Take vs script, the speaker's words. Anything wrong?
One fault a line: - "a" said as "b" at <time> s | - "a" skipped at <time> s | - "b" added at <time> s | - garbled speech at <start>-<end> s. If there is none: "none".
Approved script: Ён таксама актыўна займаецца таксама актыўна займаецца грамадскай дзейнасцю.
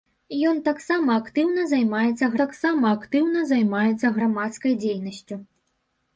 none